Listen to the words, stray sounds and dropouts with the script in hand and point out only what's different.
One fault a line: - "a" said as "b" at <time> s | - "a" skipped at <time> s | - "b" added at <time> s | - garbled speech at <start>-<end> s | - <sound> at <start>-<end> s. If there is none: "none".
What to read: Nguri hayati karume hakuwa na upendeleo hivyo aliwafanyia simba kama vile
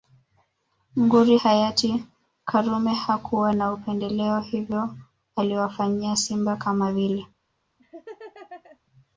- laugh at 7.8-8.8 s